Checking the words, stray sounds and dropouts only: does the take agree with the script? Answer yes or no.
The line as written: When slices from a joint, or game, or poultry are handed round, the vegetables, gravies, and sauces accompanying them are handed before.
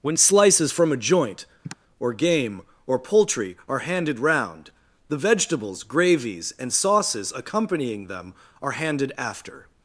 no